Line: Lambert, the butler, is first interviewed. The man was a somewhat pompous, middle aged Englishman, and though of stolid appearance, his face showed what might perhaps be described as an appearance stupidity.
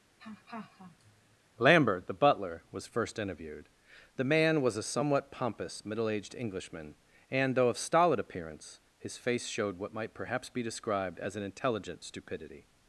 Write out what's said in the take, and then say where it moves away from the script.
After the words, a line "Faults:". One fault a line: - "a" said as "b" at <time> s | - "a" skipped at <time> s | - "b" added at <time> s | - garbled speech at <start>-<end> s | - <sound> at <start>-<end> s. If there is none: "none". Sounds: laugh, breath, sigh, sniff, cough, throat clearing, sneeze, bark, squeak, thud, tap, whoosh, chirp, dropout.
Lambert, the butler, was first interviewed. The man was a somewhat pompous, middle aged Englishman, and though of stolid appearance, his face showed what might perhaps be described as an intelligent stupidity.
Faults:
- laugh at 0.2-1.4 s
- "is" said as "was" at 2.7 s
- "appearance" said as "intelligent" at 11.4 s